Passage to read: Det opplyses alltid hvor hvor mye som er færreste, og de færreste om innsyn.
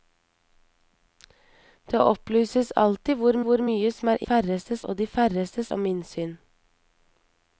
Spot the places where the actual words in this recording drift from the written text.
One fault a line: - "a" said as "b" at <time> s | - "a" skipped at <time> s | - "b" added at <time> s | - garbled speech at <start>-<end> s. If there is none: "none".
none